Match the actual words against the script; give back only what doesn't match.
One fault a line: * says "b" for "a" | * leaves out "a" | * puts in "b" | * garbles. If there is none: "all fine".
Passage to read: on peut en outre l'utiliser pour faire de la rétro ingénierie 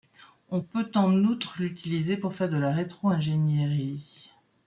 all fine